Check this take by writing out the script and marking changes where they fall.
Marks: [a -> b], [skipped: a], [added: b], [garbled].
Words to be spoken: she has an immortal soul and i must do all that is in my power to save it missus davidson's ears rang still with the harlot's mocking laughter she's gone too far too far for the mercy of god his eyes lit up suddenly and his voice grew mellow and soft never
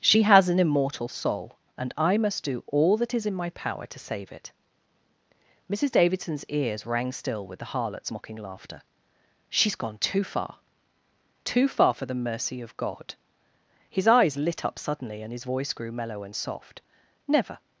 she has an immortal soul and i must do all that is in my power to save it missus davidson's ears rang still with the harlot's mocking laughter she's gone too far too far for the mercy of god his eyes lit up suddenly and his voice grew mellow and soft never